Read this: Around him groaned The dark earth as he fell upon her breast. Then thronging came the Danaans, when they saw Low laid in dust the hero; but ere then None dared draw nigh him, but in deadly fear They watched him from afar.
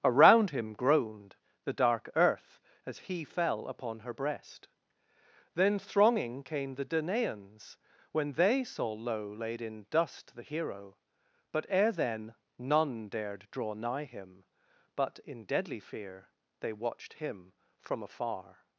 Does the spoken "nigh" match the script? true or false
true